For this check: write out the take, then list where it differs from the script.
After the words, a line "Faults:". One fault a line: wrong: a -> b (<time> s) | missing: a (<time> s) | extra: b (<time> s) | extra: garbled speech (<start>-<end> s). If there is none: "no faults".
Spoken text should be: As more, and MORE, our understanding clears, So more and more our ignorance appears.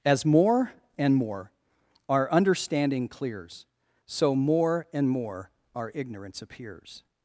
As more, and MORE, our understanding clears, So more and more our ignorance appears.
Faults:
no faults